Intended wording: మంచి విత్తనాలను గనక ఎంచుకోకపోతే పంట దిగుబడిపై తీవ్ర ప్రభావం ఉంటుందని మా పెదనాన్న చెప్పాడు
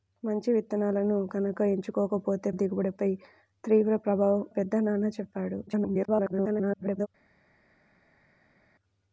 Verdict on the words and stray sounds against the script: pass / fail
fail